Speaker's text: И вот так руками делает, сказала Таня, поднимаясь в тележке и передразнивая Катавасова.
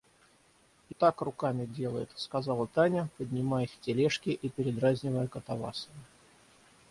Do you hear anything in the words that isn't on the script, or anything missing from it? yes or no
yes